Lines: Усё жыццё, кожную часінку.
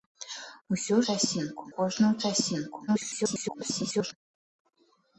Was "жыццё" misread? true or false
true